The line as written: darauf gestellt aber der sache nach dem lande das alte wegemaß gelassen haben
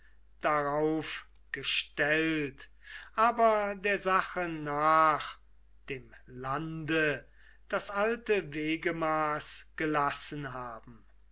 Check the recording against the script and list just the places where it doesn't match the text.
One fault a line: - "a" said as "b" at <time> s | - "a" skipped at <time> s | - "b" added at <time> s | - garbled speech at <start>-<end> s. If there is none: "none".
none